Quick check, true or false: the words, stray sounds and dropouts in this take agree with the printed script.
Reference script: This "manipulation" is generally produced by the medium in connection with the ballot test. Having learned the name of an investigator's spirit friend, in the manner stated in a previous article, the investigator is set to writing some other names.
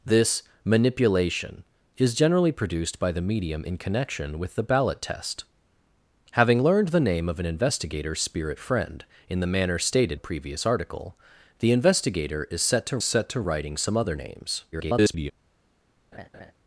false